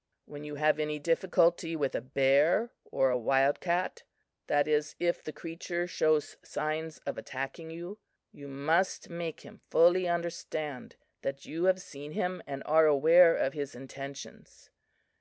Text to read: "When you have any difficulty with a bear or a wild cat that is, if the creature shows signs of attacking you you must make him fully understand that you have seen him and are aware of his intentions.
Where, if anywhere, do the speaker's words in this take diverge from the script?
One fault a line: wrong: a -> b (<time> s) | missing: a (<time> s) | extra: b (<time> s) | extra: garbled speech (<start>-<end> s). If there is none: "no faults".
no faults